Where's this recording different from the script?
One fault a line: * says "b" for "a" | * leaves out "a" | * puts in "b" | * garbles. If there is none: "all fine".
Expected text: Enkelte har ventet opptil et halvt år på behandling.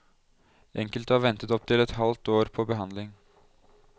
all fine